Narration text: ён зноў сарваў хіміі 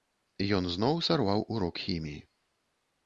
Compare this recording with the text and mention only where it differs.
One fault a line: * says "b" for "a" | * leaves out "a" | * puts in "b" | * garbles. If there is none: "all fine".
* puts in "урок"